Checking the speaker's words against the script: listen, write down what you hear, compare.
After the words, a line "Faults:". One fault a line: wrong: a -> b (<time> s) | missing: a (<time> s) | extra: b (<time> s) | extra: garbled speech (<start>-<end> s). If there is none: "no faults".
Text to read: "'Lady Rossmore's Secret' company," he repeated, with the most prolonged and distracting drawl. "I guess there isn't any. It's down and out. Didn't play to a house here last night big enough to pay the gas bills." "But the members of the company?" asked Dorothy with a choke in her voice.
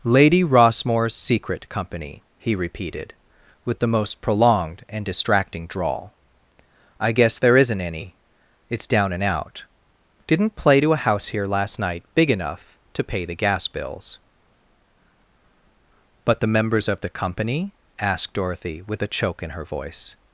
"'Lady Rossmore's Secret' company," he repeated, with the most prolonged and distracting drawl. "I guess there isn't any. It's down and out. Didn't play to a house here last night big enough to pay the gas bills." "But the members of the company?" asked Dorothy with a choke in her voice.
Faults:
no faults